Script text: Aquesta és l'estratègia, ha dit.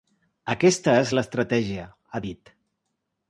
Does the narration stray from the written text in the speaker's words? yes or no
no